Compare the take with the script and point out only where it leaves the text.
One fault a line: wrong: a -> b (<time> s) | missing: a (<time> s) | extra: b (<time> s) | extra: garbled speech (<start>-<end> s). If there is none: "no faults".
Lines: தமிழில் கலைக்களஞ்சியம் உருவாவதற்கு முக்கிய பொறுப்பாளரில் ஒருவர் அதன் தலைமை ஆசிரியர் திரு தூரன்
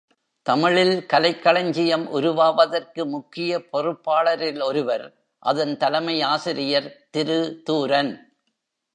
no faults